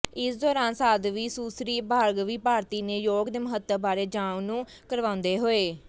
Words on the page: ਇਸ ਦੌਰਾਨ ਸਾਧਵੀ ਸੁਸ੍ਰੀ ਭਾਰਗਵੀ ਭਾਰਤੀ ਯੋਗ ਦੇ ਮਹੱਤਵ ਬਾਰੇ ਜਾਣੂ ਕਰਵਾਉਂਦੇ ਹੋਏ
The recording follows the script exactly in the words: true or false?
false